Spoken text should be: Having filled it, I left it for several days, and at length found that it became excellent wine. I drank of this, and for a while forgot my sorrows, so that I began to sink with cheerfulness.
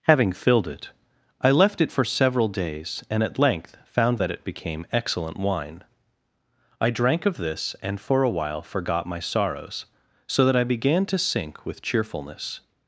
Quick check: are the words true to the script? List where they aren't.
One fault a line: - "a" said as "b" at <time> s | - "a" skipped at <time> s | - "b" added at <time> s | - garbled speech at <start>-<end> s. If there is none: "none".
none